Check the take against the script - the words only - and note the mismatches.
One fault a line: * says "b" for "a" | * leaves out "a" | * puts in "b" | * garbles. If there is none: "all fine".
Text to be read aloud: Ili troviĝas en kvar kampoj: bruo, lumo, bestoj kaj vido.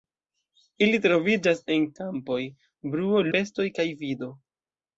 * leaves out "kvar"
* leaves out "lumo"